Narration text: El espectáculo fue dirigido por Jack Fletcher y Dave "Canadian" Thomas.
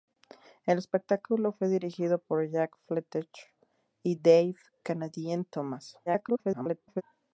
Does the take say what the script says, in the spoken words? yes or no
no